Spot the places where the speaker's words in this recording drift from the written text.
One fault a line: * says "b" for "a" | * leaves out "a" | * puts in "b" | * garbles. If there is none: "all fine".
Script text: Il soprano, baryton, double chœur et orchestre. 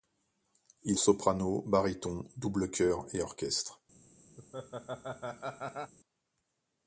all fine